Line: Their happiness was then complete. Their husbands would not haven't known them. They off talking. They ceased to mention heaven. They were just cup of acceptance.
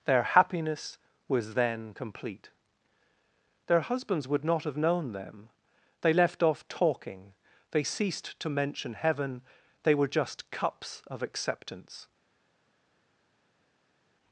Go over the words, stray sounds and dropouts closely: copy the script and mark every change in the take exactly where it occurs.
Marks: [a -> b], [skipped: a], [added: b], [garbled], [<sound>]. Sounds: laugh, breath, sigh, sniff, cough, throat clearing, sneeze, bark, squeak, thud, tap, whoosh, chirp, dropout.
Their happiness was then complete. Their husbands would not [haven't -> have] known them. They [added: left] off talking. They ceased to mention heaven. They were just [cup -> cups] of acceptance.